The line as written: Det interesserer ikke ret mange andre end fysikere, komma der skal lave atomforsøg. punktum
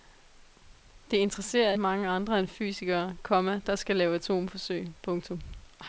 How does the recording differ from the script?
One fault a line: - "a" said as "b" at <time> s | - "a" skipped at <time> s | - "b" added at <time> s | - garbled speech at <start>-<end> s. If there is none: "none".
- "ikke ret" skipped at 1.7 s